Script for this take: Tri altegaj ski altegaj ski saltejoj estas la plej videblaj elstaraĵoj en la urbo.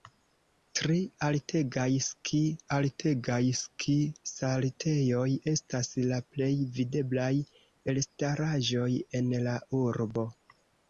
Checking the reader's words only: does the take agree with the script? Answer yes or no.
yes